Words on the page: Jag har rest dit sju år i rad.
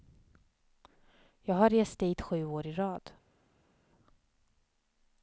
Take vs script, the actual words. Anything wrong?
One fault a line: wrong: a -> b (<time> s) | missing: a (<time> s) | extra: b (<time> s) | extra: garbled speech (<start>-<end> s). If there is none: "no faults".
no faults